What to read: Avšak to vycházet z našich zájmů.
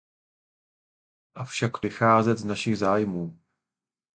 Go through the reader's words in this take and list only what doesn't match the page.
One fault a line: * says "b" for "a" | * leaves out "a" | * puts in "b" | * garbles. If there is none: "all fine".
all fine